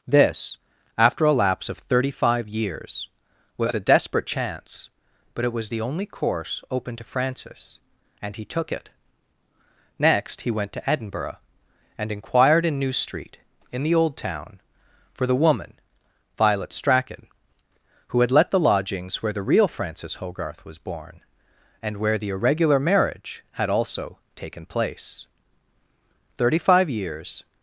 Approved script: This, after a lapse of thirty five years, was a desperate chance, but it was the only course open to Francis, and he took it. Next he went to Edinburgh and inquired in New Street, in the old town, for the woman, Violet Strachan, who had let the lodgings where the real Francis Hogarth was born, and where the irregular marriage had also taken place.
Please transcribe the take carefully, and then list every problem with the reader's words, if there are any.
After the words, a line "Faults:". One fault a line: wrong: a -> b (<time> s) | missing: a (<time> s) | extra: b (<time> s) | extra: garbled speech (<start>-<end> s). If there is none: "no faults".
This, after a lapse of thirty five years, was a desperate chance, but it was the only course open to Francis, and he took it. Next he went to Edinburgh and inquired in New Street, in the old town, for the woman, Violet Strachan, who had let the lodgings where the real Francis Hogarth was born, and where the irregular marriage had also taken place. Thirty five years
Faults:
extra: Thirty five years (26.4 s)